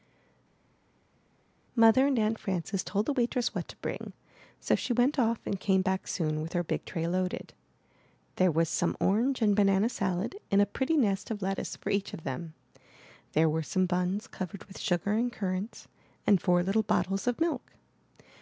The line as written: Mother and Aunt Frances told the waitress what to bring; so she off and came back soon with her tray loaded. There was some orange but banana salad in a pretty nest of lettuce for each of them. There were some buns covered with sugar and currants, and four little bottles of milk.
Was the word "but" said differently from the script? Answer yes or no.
yes